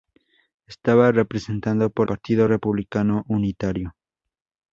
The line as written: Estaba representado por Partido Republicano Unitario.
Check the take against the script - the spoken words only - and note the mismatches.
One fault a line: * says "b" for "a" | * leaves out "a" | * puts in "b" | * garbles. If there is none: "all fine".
all fine